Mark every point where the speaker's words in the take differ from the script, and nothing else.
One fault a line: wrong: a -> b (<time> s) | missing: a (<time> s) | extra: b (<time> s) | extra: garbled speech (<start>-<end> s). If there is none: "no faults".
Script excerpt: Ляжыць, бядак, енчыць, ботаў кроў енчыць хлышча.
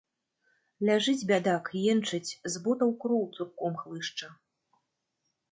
extra: з (2.5 s)
wrong: енчыць -> цурком (3.4 s)